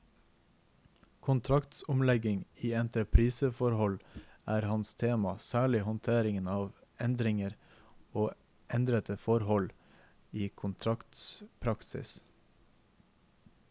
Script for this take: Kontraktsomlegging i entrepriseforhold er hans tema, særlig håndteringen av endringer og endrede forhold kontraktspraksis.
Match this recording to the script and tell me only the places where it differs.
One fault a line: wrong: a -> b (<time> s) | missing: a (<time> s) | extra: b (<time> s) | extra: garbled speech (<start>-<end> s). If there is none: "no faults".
extra: i (10.3 s)